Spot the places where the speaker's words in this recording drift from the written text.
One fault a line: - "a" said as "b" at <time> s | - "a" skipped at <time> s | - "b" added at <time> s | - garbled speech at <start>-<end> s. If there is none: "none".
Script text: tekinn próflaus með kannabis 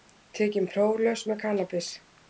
none